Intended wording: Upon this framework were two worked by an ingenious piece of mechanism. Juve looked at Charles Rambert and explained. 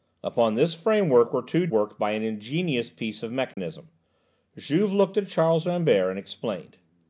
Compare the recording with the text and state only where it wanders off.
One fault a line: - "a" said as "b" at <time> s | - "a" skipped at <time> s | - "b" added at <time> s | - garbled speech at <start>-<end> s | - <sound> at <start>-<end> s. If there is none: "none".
- dropout at 3.5-3.6 s